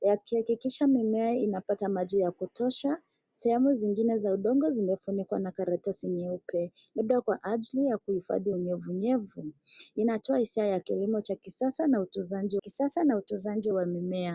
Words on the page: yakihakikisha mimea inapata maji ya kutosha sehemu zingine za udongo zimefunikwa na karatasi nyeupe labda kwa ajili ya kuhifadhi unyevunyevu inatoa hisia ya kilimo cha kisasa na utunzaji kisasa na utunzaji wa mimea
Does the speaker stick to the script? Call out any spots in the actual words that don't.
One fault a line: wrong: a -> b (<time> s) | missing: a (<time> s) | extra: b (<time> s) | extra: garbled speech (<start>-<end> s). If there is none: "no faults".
no faults